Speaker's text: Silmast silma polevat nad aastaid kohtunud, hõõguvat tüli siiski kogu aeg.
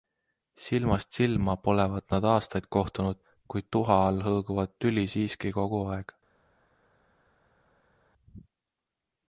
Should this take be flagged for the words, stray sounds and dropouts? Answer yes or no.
yes